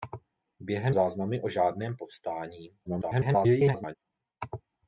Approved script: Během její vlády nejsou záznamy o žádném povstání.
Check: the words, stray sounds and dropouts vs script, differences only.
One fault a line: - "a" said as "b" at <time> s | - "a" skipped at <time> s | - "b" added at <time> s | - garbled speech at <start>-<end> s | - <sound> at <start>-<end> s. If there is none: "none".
- "její vlády nejsou" skipped at 0.9 s
- garbled speech at 2.8-4.0 s